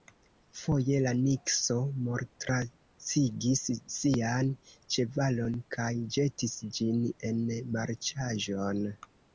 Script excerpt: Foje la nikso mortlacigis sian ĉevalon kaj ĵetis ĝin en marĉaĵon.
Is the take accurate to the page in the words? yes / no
yes